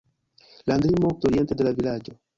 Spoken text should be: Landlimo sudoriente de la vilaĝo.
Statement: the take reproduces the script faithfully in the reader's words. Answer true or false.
true